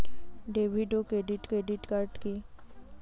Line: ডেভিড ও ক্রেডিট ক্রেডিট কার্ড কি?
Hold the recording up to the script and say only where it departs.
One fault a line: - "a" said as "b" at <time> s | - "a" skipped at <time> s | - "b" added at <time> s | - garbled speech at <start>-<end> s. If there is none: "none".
none